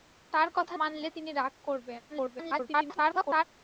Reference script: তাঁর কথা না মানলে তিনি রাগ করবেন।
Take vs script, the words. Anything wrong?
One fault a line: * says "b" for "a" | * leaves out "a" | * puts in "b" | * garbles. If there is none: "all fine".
* leaves out "না"
* garbles